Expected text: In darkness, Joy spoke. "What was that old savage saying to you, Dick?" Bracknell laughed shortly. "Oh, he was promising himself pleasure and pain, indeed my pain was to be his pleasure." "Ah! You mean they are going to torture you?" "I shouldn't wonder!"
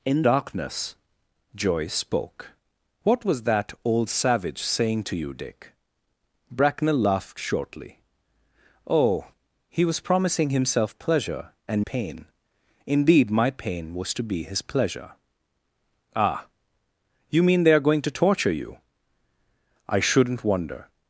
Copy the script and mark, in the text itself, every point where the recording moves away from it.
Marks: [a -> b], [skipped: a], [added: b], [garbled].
In darkness, Joy spoke. "What was that old savage saying to you, Dick?" Bracknell laughed shortly. "Oh, he was promising himself pleasure and pain, indeed my pain was to be his pleasure." "Ah! You mean they are going to torture you?" "I shouldn't wonder!"